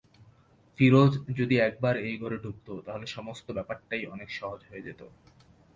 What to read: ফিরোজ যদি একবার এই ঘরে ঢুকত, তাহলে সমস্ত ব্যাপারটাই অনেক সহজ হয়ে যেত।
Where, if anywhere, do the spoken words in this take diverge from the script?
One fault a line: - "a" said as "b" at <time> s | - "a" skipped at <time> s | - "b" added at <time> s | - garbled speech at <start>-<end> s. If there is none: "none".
none